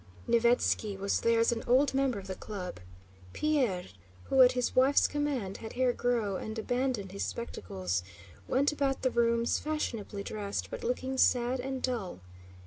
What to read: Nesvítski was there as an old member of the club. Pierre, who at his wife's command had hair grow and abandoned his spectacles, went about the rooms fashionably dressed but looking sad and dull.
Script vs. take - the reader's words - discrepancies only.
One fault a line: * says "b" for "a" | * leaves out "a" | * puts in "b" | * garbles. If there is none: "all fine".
all fine